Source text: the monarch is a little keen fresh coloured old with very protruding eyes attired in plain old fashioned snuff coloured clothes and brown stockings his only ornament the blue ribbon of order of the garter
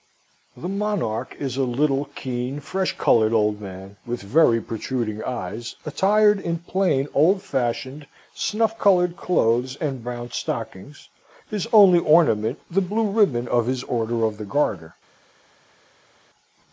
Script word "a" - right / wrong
right